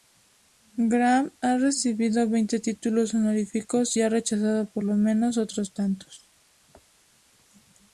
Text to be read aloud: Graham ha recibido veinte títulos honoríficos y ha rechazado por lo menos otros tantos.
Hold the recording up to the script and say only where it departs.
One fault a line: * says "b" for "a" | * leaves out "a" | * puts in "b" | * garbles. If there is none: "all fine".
all fine